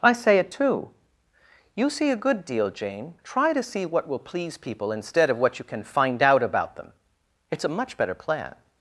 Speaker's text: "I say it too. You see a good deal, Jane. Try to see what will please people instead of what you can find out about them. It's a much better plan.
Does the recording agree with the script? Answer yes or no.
yes